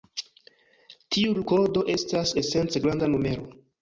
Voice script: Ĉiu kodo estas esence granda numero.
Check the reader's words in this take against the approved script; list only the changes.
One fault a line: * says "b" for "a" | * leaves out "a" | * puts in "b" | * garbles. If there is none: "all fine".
* says "Tiu" for "Ĉiu"